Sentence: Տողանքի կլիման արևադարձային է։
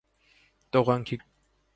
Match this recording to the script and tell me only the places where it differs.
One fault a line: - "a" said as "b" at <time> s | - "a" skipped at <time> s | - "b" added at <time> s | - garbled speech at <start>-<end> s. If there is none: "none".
- "կլիման արևադարձային" skipped at 1.2 s